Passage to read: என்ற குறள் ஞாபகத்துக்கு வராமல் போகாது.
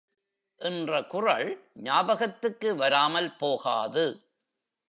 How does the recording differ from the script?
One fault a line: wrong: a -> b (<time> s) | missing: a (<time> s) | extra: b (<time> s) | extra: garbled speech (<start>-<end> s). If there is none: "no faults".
no faults